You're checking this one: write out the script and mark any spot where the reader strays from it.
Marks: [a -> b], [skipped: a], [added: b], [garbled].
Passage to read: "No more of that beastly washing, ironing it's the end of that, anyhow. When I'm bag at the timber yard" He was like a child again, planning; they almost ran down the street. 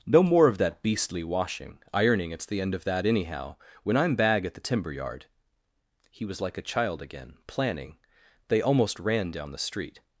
"No more of that beastly washing, ironing it's the end of that, anyhow. When I'm bag at the timber yard" He was like a child again, planning; they almost ran down the street.